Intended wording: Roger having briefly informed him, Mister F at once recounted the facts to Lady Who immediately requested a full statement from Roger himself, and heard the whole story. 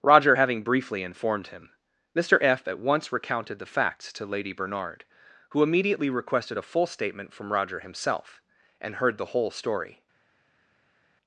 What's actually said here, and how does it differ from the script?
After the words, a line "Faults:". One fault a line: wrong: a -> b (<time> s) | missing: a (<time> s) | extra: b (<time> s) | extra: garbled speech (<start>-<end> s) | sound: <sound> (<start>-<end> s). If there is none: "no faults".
Roger having briefly informed him, Mister F at once recounted the facts to Lady Bernard, who immediately requested a full statement from Roger himself, and heard the whole story.
Faults:
extra: Bernard (4.5 s)